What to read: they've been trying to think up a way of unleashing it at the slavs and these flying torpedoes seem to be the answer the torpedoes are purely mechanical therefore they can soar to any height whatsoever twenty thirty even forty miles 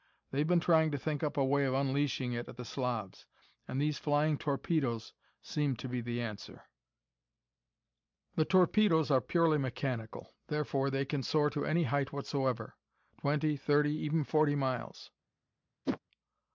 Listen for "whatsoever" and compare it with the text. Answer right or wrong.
right